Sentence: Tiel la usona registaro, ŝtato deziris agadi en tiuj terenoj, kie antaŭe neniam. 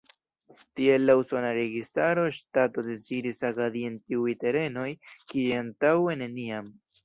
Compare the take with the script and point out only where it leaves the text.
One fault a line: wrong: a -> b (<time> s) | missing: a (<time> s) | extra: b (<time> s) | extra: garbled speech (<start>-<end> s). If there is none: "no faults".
no faults